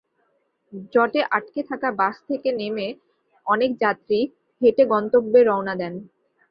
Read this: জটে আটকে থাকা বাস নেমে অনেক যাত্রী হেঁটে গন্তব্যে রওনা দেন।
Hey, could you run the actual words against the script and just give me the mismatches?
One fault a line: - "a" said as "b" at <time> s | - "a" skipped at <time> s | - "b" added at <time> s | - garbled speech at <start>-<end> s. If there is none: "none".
- "থেকে" added at 2.3 s